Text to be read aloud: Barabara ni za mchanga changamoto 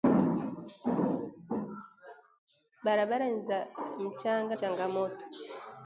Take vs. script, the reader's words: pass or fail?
pass